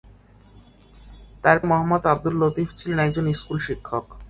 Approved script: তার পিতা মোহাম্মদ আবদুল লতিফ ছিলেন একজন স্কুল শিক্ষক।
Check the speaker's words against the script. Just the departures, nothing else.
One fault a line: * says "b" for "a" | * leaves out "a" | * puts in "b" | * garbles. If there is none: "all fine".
* leaves out "পিতা"